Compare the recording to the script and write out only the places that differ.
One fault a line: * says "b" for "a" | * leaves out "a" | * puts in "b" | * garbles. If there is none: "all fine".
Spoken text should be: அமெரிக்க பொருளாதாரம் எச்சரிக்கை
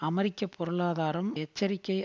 all fine